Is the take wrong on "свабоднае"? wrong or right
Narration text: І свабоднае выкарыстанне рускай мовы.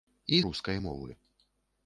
wrong